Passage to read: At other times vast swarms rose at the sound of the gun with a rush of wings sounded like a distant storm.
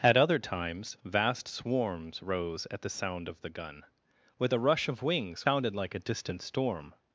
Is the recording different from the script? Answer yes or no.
no